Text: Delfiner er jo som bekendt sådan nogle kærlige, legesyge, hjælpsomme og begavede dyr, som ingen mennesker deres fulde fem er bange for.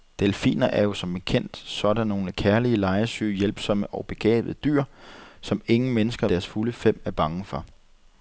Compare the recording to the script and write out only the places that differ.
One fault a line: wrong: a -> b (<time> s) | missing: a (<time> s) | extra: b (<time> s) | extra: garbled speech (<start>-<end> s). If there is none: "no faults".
no faults